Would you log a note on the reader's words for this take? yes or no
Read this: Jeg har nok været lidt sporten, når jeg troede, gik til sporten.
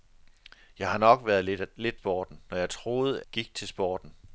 no